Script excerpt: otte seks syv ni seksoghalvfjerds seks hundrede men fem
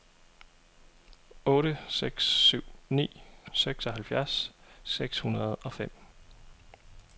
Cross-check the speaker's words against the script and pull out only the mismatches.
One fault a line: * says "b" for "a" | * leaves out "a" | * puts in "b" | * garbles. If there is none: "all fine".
* says "og" for "men"